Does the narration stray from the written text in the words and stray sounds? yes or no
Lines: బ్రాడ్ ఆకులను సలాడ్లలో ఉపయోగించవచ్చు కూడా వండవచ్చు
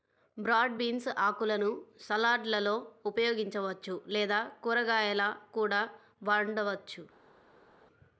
yes